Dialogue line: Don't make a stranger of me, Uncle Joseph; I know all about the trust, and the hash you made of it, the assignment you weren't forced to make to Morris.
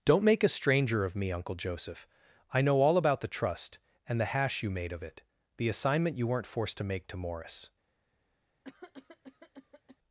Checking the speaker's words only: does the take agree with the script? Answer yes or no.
yes